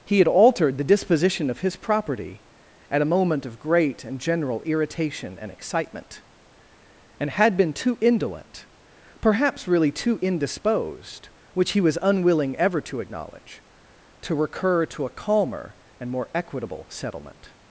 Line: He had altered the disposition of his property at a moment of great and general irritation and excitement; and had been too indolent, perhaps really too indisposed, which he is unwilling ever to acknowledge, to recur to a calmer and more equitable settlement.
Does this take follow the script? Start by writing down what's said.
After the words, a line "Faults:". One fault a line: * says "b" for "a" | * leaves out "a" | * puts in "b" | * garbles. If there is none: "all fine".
He had altered the disposition of his property at a moment of great and general irritation and excitement; and had been too indolent, perhaps really too indisposed, which he was unwilling ever to acknowledge, to recur to a calmer and more equitable settlement.
Faults:
* says "was" for "is"